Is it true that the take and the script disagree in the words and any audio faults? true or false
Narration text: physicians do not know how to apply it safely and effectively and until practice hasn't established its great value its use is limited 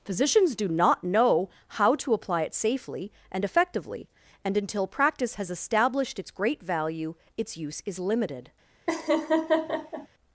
true